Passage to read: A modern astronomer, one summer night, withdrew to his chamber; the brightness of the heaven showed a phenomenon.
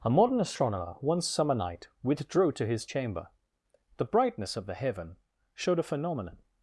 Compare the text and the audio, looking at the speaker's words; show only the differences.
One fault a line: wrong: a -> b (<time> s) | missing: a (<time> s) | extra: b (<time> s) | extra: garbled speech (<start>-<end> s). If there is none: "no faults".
no faults